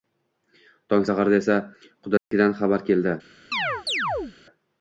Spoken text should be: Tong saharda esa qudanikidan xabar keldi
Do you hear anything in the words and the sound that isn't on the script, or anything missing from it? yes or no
yes